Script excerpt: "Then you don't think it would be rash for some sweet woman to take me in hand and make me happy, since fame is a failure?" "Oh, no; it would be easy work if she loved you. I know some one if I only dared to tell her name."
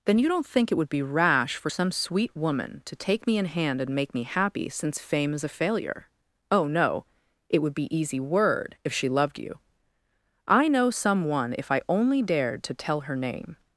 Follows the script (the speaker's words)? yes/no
no